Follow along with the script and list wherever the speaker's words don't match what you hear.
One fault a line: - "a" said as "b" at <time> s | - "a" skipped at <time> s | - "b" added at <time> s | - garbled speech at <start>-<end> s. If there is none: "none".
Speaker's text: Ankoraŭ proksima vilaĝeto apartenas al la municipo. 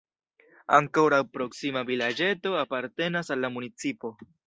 none